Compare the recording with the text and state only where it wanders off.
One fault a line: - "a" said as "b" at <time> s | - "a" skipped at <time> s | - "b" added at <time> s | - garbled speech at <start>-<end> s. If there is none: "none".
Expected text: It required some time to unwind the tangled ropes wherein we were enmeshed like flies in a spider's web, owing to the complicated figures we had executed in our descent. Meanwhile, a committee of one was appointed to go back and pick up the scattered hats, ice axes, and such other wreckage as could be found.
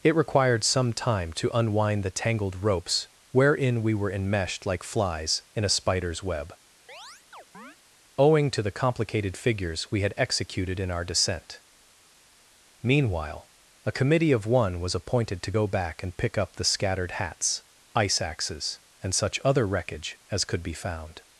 none